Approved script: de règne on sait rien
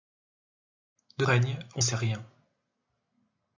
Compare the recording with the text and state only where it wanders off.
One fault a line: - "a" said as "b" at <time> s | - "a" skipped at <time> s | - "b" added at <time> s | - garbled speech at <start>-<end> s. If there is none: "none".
none